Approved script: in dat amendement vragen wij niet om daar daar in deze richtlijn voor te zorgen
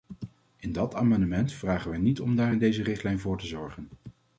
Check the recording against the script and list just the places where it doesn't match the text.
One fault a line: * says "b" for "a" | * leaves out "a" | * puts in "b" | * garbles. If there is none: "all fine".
* leaves out "daar"